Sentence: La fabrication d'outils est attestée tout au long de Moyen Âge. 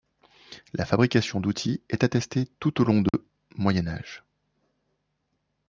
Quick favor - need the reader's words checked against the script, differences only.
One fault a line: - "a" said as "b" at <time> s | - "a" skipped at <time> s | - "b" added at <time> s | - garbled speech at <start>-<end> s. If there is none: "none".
none